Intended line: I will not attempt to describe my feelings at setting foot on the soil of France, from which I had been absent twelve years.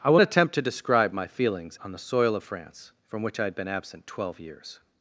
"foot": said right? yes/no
no